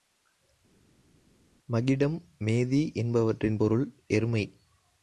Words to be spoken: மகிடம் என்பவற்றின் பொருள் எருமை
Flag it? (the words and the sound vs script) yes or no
yes